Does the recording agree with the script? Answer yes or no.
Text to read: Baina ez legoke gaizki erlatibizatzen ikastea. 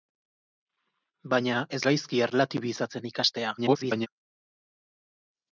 no